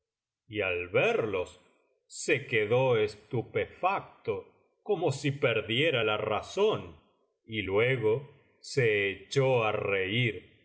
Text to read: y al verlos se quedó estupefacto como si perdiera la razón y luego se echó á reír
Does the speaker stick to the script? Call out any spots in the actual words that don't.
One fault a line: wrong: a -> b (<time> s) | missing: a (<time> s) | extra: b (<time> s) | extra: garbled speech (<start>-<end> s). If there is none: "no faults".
no faults